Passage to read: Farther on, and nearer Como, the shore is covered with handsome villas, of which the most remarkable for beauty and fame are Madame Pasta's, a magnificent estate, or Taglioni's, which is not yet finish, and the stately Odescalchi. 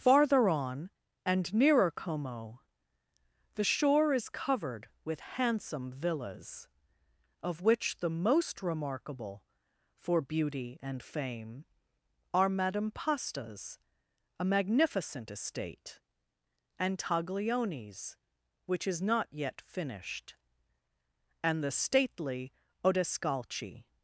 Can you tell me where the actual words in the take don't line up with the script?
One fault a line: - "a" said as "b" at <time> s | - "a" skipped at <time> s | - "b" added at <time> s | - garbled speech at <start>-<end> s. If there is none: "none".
- "or" said as "and" at 16.8 s
- "finish" said as "finished" at 19.6 s